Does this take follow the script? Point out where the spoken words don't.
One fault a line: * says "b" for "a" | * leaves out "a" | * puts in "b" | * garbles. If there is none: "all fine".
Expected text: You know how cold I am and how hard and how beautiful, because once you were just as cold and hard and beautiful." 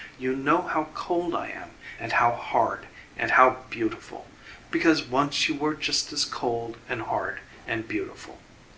all fine